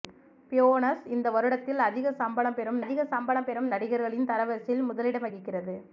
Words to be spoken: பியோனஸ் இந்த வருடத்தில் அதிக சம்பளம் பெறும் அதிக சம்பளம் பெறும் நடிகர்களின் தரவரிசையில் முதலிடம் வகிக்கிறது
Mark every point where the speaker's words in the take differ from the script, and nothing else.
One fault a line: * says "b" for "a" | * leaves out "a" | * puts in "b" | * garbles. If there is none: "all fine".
all fine